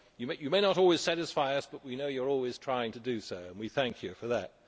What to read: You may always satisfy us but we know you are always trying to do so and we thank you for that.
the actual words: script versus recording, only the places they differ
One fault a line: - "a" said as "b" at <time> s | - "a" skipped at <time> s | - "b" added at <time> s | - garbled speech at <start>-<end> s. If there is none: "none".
- "not" added at 0.6 s